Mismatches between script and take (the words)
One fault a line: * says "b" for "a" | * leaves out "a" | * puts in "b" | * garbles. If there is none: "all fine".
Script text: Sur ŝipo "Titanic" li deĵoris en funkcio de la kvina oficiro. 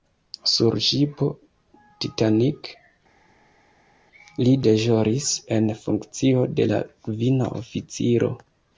all fine